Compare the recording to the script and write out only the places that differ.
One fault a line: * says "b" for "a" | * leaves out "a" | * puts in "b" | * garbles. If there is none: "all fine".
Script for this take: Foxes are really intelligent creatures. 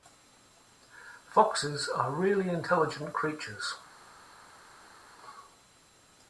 all fine